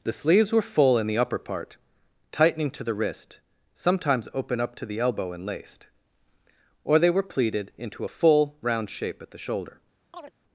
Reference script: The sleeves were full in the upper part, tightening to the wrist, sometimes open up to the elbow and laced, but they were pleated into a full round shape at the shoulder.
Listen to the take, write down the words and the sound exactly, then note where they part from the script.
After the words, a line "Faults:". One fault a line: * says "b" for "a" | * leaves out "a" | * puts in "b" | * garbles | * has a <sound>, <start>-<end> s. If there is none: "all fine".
The sleeves were full in the upper part, tightening to the wrist, sometimes open up to the elbow and laced, or they were pleated into a full round shape at the shoulder.
Faults:
* says "or" for "but"
* has a chirp, 10.1-10.3 s